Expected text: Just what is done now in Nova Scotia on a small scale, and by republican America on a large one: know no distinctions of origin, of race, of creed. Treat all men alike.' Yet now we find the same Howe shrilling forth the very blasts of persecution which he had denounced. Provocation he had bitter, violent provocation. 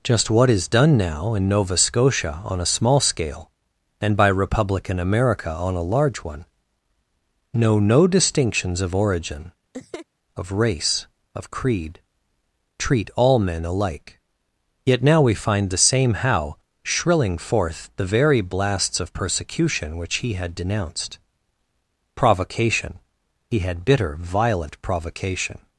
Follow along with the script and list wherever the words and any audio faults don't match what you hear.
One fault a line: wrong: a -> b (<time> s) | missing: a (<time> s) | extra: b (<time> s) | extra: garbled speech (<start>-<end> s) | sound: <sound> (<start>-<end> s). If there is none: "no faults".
sound: laugh (9.7-10.1 s)